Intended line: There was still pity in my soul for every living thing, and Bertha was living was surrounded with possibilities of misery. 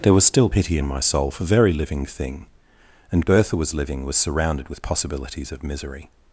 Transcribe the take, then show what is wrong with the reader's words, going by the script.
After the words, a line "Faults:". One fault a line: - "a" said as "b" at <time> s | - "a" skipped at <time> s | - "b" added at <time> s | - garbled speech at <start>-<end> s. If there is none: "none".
There was still pity in my soul for very living thing, and Bertha was living was surrounded with possibilities of misery.
Faults:
- "every" said as "very" at 1.4 s